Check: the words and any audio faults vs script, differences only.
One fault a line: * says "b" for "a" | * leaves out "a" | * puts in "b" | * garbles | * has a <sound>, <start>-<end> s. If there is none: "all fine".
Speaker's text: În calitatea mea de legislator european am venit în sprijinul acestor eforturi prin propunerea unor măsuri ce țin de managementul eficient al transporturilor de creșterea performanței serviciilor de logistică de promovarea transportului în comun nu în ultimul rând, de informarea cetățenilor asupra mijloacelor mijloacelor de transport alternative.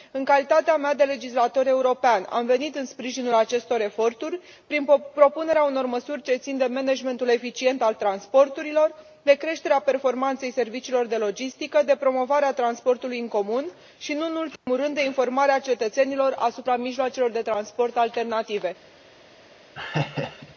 * puts in "și"
* has a dropout, 14.6-14.7 s
* leaves out "mijloacelor"
* has a laugh, 19.8-20.6 s